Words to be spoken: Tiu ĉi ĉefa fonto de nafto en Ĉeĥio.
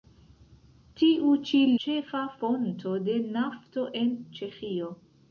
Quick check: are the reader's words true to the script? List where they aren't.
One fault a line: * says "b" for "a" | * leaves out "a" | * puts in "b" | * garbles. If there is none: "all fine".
all fine